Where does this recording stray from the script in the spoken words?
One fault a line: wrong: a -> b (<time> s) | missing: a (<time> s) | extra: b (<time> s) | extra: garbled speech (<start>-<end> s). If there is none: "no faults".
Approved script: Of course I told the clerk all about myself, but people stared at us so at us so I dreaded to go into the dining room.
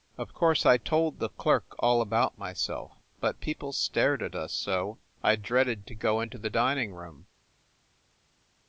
missing: at us so (5.0 s)